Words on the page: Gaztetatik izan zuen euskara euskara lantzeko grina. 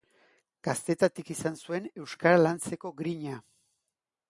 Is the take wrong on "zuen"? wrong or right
right